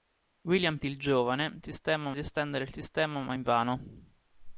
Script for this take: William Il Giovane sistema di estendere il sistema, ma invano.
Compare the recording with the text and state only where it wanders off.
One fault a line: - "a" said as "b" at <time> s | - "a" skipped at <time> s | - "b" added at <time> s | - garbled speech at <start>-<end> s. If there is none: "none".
none